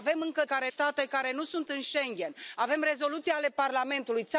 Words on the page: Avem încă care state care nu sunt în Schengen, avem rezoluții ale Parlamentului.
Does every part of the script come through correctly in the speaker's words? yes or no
yes